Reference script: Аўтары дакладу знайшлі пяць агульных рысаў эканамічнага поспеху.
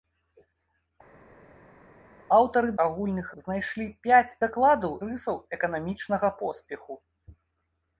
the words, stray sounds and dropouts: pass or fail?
fail